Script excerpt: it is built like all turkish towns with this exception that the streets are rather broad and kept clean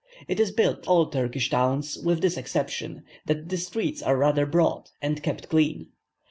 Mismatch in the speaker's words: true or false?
true